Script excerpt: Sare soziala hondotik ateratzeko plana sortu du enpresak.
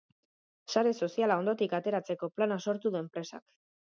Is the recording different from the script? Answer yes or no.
no